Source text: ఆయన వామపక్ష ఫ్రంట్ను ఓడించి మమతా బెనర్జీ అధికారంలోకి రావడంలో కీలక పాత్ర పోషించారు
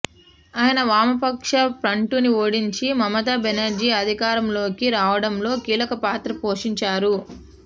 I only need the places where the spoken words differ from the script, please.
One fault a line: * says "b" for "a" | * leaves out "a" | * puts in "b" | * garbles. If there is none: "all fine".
all fine